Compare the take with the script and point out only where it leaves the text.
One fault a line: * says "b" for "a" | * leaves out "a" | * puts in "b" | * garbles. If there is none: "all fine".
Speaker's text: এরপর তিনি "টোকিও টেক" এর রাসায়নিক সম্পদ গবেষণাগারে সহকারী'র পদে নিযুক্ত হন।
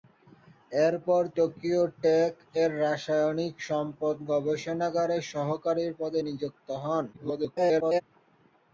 * leaves out "তিনি"
* garbles